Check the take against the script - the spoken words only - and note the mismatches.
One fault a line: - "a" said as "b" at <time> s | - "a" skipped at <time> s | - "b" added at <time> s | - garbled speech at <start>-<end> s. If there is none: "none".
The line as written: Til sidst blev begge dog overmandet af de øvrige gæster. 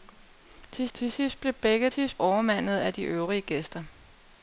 - "til" added at 0.9 s
- "dog" said as "sidst" at 1.9 s